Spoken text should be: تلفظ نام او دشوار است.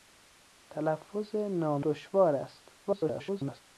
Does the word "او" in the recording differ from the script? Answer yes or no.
yes